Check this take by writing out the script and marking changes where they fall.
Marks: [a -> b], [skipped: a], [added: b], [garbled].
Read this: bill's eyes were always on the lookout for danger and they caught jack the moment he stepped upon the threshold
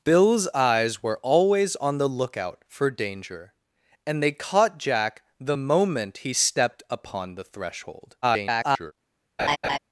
bill's eyes were always on the lookout for danger and they caught jack the moment he stepped upon the threshold [garbled]